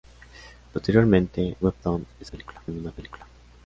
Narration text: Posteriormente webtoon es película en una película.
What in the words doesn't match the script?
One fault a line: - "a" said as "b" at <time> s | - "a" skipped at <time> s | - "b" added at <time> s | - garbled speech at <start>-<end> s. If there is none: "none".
none